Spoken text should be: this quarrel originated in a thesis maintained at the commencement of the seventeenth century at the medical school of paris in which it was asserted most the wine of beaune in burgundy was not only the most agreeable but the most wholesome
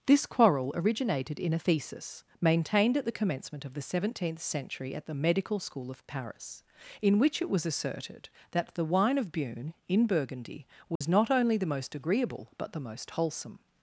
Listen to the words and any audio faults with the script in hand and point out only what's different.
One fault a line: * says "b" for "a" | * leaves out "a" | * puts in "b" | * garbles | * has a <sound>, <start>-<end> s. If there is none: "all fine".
* says "that" for "most"
* has a dropout, 11.0-11.0 s